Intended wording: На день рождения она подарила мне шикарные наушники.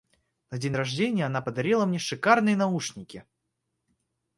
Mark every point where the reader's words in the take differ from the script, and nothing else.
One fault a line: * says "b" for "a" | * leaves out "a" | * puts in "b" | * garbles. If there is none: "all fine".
all fine